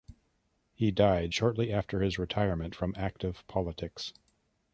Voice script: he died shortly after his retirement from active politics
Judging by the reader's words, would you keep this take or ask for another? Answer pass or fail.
pass